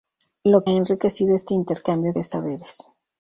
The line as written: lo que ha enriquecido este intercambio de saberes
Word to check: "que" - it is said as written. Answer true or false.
false